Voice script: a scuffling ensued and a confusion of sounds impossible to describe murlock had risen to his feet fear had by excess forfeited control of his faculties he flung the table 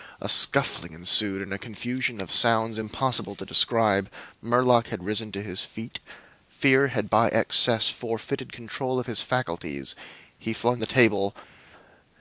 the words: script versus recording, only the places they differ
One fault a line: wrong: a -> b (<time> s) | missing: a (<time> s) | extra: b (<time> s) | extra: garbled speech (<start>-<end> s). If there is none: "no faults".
no faults